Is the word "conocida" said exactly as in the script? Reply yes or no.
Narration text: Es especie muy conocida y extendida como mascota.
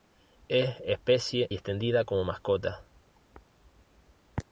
no